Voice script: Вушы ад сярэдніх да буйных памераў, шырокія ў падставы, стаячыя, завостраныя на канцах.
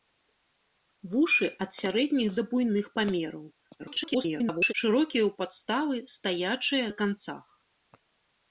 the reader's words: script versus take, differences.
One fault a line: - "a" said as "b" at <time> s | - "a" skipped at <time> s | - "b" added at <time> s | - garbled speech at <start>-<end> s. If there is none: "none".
- garbled speech at 3.8-4.7 s
- "завостраныя" skipped at 6.9 s